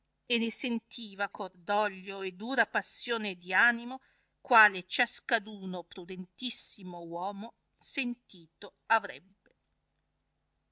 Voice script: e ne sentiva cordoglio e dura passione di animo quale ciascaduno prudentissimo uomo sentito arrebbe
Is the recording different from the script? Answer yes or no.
no